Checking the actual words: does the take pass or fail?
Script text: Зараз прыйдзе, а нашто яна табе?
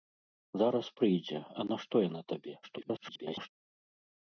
fail